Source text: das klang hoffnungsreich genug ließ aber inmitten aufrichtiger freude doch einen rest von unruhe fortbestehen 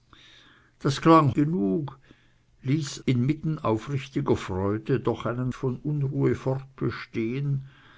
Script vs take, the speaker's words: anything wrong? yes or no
yes